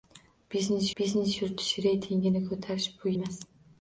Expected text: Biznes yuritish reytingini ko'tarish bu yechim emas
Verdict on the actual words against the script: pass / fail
fail